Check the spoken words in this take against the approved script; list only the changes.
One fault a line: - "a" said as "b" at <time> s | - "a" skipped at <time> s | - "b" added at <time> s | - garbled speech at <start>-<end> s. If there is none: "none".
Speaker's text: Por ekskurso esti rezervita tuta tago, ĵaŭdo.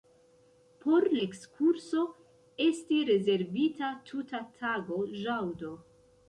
none